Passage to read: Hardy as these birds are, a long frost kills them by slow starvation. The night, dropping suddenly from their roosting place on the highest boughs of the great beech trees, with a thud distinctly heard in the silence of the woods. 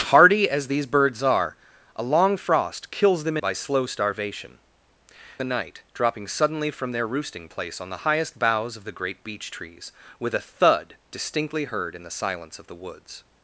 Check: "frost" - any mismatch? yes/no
no